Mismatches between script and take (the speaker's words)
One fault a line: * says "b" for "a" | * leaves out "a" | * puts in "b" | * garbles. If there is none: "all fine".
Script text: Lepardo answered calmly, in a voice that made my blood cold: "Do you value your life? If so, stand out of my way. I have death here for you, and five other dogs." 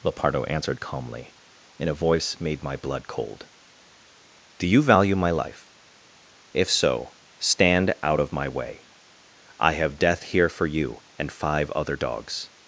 * leaves out "that"
* says "my" for "your"